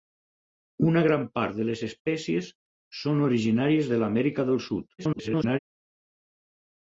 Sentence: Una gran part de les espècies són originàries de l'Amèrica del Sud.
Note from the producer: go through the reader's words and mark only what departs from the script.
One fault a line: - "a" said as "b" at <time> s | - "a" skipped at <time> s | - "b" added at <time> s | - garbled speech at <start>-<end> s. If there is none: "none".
- garbled speech at 5.0-5.6 s